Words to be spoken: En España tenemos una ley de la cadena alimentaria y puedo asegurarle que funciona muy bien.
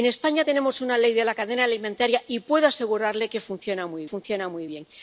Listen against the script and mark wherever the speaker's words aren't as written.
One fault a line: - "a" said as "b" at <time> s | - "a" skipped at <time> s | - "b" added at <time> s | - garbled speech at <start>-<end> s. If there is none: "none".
- "funciona muy" added at 4.0 s